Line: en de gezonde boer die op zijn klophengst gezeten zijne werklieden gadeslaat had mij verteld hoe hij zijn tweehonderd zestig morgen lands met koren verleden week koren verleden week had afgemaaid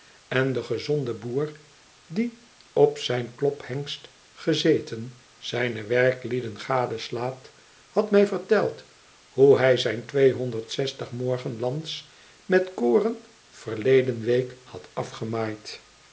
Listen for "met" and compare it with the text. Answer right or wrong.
right